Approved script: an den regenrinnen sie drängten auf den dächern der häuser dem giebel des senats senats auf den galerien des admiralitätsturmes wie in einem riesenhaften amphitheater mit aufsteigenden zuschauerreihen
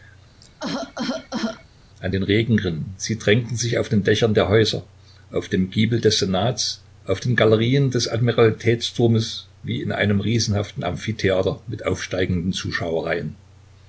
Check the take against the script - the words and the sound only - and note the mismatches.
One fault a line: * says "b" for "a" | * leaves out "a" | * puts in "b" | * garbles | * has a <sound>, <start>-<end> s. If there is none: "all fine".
* has a cough, 0.4-1.7 s
* puts in "sich"
* puts in "auf"
* leaves out "senats"